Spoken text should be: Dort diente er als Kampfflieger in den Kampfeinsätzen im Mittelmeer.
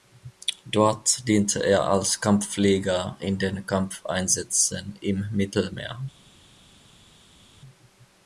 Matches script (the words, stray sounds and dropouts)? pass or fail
pass